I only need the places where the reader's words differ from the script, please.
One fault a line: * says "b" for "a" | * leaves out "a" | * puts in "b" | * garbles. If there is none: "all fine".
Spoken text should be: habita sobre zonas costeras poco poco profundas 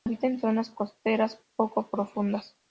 * says "en" for "sobre"
* leaves out "poco"